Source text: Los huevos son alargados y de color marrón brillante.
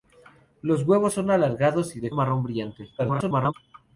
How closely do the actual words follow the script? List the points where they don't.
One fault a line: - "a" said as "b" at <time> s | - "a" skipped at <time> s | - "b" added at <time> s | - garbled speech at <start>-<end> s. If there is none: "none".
- "color" skipped at 2.1 s
- garbled speech at 3.0-3.5 s